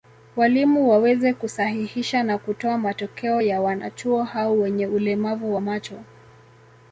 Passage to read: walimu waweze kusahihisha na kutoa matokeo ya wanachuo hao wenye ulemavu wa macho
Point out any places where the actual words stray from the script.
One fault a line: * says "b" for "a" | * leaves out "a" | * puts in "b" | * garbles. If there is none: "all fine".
all fine